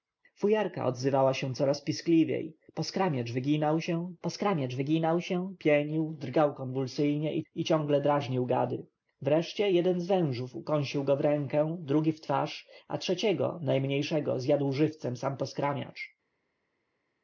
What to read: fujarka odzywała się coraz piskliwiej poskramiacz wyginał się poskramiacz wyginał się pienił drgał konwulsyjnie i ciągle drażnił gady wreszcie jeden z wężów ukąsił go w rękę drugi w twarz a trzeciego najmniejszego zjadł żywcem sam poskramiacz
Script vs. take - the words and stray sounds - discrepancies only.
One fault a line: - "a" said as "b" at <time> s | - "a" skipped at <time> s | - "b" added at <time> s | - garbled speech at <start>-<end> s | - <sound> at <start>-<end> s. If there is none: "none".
none